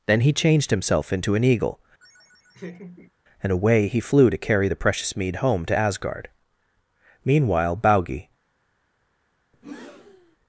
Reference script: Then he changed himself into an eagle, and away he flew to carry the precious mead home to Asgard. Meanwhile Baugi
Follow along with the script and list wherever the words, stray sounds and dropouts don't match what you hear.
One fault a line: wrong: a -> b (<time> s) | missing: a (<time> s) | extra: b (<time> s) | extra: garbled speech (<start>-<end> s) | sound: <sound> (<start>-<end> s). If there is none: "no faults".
sound: laugh (2.0-3.1 s)
sound: breath (9.5-10.4 s)